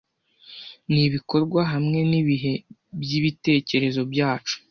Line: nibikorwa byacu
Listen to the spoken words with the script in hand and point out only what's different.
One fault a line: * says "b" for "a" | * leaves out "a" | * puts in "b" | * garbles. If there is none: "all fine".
* puts in "hamwe nibihe byibitekerezo"